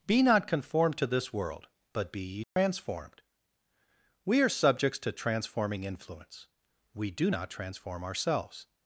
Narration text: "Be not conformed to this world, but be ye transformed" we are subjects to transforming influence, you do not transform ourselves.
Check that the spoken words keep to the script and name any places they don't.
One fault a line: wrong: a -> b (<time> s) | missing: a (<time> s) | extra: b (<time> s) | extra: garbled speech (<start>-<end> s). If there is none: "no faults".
wrong: you -> we (6.9 s)